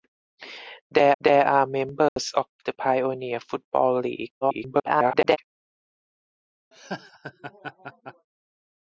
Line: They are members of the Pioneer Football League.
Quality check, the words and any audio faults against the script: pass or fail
fail